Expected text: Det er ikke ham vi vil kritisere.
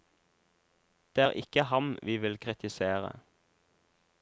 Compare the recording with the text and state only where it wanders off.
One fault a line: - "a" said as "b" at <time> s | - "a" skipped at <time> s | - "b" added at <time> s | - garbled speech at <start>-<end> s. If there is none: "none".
none